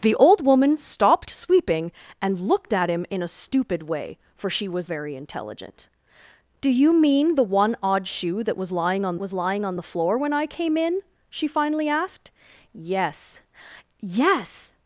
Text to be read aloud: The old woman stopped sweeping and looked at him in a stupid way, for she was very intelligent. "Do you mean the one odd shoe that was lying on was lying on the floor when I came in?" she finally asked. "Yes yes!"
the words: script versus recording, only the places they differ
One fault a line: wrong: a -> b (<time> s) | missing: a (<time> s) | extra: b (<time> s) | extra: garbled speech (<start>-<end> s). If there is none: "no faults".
no faults